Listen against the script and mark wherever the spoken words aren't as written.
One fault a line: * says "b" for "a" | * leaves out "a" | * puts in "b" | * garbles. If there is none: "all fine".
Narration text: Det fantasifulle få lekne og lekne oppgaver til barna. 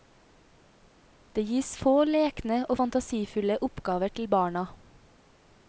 * says "gis" for "fantasifulle"
* says "fantasifulle" for "lekne"